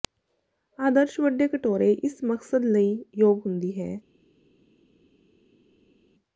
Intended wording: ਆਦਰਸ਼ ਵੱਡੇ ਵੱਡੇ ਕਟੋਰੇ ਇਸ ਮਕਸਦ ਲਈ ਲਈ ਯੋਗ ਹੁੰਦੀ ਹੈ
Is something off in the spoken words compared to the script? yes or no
yes